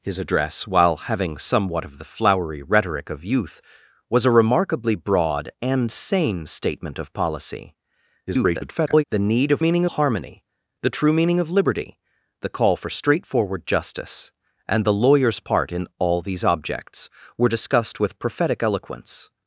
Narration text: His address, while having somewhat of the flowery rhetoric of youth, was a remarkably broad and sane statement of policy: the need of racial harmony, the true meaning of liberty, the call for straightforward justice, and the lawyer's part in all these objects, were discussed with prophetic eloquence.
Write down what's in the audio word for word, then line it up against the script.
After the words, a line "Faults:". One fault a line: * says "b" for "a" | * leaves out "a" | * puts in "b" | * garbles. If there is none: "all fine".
His address, while having somewhat of the flowery rhetoric of youth, was a remarkably broad and sane statement of policy: [garbled] the need of meaning harmony, the true meaning of liberty, the call for straightforward justice, and the lawyer's part in all these objects, were discussed with prophetic eloquence.
Faults:
* garbles
* says "meaning" for "racial"